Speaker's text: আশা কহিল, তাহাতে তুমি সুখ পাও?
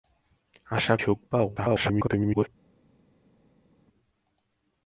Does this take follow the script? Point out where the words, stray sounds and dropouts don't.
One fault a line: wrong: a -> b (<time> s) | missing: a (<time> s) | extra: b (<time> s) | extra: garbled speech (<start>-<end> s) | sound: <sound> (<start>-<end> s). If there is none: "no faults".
missing: কহিল তাহাতে তুমি (0.9 s)
extra: garbled speech (1.6-2.5 s)